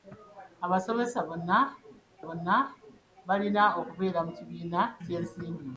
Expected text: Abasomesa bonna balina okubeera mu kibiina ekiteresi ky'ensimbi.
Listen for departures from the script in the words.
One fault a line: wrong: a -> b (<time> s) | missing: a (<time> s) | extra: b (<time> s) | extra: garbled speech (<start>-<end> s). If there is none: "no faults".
extra: bonna (2.3 s)
missing: ekiteresi (4.8 s)